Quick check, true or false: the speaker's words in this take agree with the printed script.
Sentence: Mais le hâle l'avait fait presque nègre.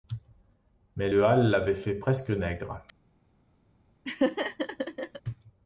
true